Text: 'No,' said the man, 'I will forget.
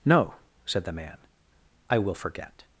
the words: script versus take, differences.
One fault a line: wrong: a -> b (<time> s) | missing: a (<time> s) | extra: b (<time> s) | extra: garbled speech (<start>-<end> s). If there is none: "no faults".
no faults